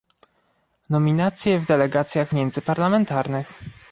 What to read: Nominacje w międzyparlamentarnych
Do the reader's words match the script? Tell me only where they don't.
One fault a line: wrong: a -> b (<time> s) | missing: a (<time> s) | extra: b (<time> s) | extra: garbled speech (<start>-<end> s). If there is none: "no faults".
extra: delegacjach (1.6 s)